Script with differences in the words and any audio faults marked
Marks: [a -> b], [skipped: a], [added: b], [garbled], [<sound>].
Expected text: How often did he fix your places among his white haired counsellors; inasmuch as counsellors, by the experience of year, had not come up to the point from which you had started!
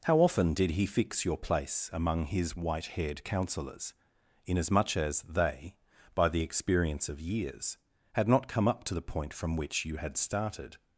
How often did he fix your [places -> place] among his white haired counsellors; inasmuch as [counsellors, -> they] by the experience of [year, -> years] had not come up to the point from which you had started!